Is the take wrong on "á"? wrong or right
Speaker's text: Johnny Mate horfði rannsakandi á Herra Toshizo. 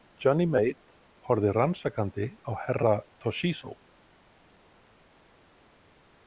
right